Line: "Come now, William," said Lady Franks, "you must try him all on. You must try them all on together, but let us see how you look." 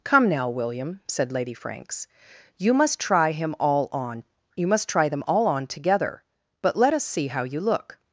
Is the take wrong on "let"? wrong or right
right